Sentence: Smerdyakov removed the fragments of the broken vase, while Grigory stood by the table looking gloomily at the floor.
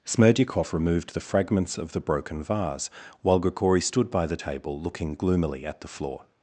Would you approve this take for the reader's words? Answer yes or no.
yes